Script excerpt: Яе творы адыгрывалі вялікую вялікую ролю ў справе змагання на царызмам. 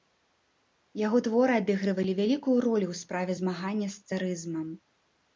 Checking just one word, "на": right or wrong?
wrong